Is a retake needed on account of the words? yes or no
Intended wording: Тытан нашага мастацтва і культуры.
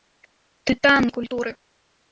yes